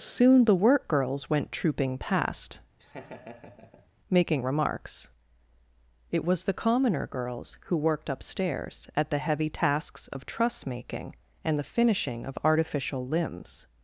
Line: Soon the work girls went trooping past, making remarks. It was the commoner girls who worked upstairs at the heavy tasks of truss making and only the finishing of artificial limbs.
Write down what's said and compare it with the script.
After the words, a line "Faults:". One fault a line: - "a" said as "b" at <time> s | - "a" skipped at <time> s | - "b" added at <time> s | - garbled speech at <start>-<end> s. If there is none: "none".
Soon the work girls went trooping past, making remarks. It was the commoner girls who worked upstairs at the heavy tasks of truss making and the finishing of artificial limbs.
Faults:
- "only" skipped at 11.6 s